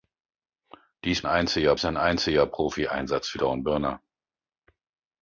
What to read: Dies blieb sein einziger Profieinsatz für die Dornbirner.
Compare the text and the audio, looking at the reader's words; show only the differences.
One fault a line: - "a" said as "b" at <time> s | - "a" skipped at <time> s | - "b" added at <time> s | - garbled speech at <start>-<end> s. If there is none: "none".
- "blieb" said as "einziger" at 1.2 s
- "die" skipped at 3.4 s